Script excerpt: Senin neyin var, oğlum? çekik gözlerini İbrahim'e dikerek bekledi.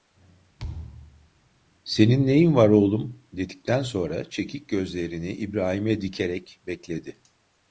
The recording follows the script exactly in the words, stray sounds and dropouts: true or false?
false